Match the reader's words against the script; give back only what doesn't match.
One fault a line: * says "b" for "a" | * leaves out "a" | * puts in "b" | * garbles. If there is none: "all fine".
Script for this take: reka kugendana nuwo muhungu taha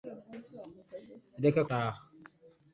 * leaves out "kugendana nuwo muhungu"